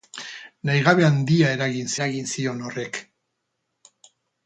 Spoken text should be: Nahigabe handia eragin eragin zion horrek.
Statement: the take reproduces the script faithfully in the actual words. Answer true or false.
true